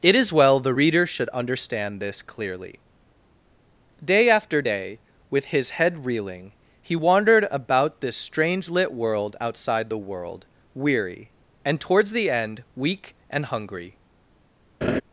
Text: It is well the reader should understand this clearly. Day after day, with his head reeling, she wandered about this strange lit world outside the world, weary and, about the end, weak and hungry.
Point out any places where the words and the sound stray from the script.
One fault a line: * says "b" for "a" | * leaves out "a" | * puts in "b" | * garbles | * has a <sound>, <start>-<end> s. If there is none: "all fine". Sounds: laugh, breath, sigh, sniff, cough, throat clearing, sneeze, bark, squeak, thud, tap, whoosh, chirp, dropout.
* says "he" for "she"
* says "towards" for "about"
* has a laugh, 14.8-15.0 s